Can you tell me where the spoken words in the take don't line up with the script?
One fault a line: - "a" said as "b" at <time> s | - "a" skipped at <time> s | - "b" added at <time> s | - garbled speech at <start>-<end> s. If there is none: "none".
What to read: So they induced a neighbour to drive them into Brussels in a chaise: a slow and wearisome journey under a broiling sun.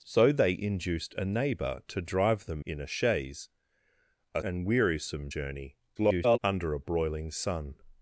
- "into Brussels" skipped at 2.6 s
- "slow" skipped at 4.4 s
- garbled speech at 6.0-6.4 s